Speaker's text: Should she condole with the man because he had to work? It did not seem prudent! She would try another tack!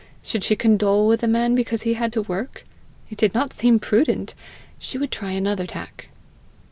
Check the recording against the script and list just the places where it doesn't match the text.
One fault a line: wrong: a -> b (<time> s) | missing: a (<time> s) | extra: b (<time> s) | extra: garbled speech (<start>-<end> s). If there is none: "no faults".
no faults